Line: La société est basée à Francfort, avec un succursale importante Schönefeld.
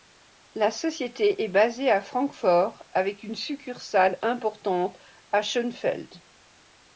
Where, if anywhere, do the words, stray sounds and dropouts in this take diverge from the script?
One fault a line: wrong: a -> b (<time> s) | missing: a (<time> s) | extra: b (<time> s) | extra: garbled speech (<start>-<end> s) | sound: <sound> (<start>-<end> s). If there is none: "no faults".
wrong: un -> une (3.2 s)
extra: à (5.3 s)